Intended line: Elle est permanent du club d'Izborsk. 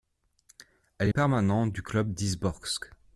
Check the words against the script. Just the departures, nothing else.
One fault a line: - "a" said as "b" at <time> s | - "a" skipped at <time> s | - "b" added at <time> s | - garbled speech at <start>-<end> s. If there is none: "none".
none